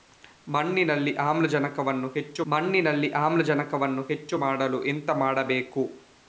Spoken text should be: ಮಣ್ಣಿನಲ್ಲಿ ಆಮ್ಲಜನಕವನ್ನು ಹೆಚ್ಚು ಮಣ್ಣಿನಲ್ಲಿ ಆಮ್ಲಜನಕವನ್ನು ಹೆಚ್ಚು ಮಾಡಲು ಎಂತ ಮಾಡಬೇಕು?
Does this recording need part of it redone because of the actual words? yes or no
no